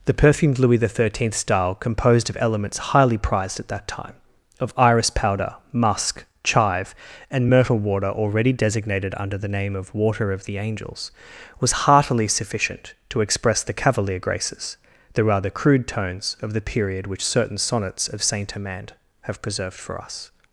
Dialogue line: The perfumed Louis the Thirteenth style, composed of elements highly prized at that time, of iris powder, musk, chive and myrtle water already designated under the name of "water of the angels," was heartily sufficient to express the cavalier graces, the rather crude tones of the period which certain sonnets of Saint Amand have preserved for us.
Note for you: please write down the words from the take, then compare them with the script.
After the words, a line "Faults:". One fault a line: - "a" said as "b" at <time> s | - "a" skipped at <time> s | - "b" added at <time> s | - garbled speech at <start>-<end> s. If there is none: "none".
The perfumed Louis the Thirteenth style, composed of elements highly prized at that time, of iris powder, musk, chive and myrtle water already designated under the name of "water of the angels," was heartily sufficient to express the cavalier graces, the rather crude tones of the period which certain sonnets of Saint Amand have preserved for us.
Faults:
none